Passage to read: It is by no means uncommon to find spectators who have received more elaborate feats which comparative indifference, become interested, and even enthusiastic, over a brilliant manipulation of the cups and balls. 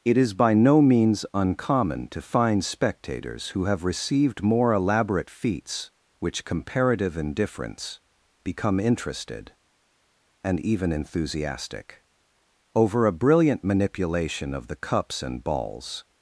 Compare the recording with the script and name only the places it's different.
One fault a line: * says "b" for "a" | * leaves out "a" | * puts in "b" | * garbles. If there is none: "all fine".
all fine